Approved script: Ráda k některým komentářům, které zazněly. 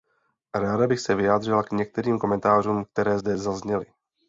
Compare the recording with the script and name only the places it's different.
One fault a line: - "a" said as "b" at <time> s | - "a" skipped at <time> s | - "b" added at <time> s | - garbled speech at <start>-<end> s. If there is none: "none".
- "bych se vyjádřila" added at 0.8 s
- "zde" added at 3.1 s